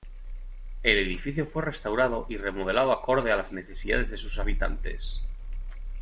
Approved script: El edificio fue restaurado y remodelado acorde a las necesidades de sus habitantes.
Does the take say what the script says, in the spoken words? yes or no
yes